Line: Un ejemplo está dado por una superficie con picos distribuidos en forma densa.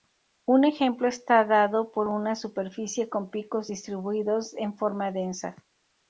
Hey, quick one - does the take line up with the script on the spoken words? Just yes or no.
yes